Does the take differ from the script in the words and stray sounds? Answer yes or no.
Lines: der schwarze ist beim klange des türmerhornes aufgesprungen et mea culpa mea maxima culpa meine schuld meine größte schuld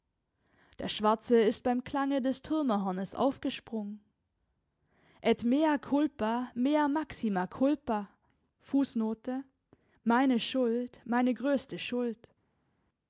no